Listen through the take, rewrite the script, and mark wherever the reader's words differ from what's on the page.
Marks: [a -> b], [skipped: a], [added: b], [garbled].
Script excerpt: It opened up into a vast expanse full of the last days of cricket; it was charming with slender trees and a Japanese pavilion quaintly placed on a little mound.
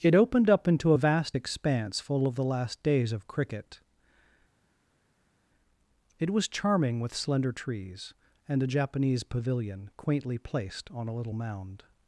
It opened up into a vast expanse full of the last days of cricket; it was charming with slender trees and a Japanese pavilion quaintly placed on a little mound.